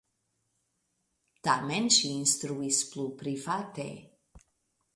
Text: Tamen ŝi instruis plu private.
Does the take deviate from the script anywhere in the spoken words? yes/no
no